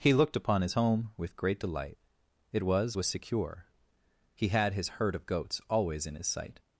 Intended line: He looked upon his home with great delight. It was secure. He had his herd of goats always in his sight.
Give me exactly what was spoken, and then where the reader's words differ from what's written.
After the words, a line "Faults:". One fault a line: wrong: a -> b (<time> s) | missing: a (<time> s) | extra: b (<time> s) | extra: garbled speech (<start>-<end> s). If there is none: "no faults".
He looked upon his home with great delight. It was was secure. He had his herd of goats always in his sight.
Faults:
extra: was (2.9 s)